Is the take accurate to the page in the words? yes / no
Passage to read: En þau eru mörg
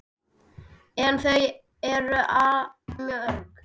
yes